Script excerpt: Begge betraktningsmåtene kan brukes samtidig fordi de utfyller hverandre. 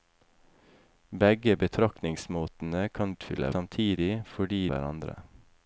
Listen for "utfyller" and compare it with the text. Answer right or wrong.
wrong